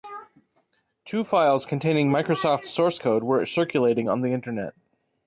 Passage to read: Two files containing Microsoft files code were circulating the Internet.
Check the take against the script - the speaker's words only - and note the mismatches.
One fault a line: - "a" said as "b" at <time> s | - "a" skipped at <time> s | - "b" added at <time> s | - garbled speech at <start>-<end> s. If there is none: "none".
- "files" said as "source" at 2.6 s
- "on" added at 4.1 s